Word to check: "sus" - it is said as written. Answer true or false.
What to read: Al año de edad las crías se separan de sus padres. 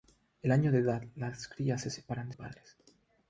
false